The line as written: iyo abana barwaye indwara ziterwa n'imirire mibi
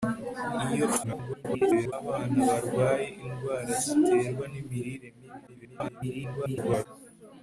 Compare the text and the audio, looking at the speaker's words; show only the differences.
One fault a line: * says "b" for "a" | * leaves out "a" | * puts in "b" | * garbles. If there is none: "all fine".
* garbles
* garbles